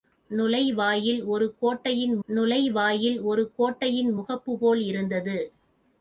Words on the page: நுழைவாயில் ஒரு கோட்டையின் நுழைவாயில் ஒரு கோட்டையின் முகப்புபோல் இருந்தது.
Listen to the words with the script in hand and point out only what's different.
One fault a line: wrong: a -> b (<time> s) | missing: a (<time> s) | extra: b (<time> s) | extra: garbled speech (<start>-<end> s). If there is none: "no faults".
no faults